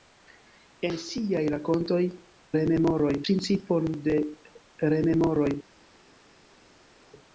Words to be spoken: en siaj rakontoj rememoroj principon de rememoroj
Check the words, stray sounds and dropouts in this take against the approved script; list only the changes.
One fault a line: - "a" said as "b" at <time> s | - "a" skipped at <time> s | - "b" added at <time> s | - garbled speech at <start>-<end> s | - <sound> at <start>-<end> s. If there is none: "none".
none